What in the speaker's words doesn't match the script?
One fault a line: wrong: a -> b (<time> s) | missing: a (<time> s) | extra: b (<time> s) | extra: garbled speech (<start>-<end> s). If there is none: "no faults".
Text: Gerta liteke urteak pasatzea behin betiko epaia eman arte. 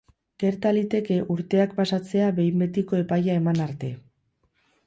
no faults